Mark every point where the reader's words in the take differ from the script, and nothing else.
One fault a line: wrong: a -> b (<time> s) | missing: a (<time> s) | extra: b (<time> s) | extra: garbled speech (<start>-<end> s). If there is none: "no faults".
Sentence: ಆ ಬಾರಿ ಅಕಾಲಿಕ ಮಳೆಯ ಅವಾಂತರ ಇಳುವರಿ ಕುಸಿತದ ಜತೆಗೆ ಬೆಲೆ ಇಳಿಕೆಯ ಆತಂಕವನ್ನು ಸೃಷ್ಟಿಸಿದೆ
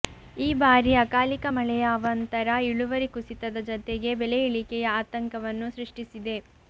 wrong: ಆ -> ಈ (0.4 s)